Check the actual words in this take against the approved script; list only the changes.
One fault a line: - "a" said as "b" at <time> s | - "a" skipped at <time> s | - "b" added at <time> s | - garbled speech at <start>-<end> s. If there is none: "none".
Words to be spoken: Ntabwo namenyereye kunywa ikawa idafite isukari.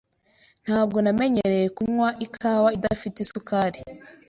none